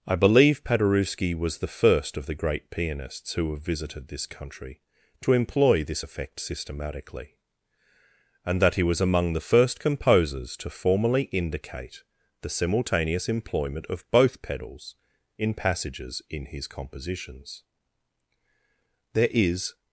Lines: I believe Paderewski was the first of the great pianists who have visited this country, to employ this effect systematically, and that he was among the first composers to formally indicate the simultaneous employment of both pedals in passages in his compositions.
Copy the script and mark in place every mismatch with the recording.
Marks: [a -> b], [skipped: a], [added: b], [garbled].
I believe Paderewski was the first of the great pianists who have visited this country, to employ this effect systematically, and that he was among the first composers to formally indicate the simultaneous employment of both pedals in passages in his compositions. [added: There is]